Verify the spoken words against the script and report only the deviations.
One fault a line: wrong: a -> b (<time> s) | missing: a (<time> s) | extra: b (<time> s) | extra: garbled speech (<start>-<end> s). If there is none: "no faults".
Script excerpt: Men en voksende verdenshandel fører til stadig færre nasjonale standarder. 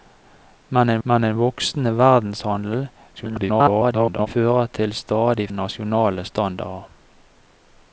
extra: men en (1.1 s)
extra: garbled speech (3.1-4.3 s)
missing: færre (5.5 s)